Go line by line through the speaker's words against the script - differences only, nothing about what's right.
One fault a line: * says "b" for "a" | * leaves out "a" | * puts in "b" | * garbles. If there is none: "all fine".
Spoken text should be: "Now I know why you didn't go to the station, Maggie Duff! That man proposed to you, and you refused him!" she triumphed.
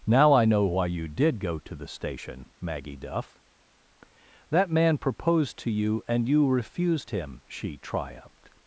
* says "did" for "didn't"